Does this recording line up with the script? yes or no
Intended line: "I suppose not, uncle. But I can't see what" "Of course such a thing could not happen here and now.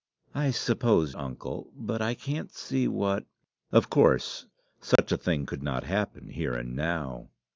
no